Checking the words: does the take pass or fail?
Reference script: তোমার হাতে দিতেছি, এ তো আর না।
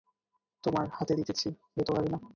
pass